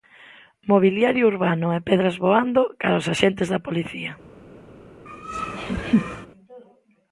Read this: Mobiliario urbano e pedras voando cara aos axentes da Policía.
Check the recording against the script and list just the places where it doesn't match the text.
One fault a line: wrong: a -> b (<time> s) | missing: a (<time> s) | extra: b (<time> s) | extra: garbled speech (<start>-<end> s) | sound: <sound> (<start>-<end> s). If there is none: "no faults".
sound: laugh (5.1-6.3 s)